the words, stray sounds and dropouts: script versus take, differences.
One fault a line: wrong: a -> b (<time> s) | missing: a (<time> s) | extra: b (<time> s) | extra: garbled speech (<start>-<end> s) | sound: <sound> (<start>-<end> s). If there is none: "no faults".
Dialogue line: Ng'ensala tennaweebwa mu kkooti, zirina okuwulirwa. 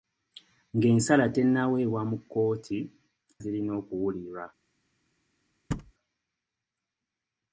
sound: thud (5.7-5.9 s)